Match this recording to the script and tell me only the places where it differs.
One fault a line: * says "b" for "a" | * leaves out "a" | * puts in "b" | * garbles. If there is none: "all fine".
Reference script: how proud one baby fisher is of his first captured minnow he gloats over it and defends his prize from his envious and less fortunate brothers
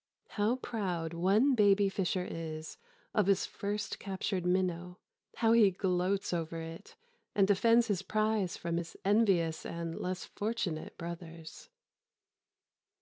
* puts in "how"